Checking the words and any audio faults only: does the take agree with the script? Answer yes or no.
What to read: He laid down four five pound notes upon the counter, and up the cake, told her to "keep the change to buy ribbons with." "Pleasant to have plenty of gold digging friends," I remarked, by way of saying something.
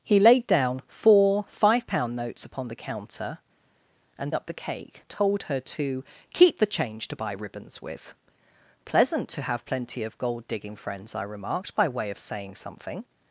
yes